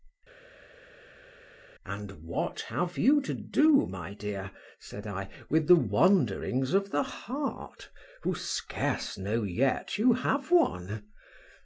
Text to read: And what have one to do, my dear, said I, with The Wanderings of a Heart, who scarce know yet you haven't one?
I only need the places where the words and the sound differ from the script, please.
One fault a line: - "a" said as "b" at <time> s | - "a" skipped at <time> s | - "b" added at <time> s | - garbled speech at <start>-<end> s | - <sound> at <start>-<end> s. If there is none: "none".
- "one" said as "you" at 3.0 s
- "a" said as "the" at 6.9 s
- "haven't" said as "have" at 10.1 s